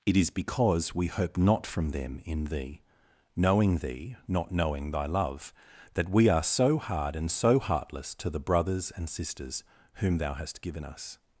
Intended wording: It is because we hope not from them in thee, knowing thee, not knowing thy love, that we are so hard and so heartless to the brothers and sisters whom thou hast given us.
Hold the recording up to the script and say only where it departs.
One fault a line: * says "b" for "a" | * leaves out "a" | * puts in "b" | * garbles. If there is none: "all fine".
all fine